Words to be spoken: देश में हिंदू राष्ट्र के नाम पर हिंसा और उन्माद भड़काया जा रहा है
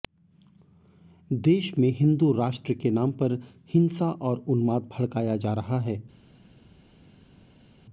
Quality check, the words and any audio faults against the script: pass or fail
pass